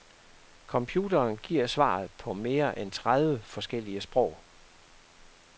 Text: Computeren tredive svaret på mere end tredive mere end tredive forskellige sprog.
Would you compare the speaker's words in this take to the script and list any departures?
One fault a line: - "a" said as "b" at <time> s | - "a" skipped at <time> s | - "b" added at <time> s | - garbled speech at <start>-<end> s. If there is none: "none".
- "tredive" said as "giver" at 1.4 s
- "mere end tredive" skipped at 3.4 s